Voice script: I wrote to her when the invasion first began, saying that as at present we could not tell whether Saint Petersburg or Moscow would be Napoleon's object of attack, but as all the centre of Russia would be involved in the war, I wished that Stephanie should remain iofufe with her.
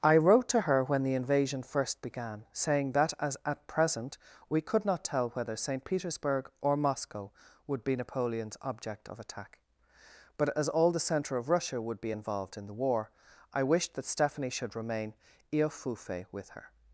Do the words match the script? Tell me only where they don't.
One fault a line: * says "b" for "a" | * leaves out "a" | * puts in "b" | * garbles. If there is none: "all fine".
all fine